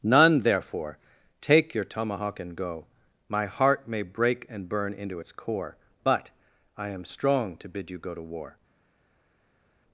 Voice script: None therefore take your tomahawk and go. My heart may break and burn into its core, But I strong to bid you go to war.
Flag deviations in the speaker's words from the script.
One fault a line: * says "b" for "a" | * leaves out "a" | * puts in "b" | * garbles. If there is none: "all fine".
* puts in "am"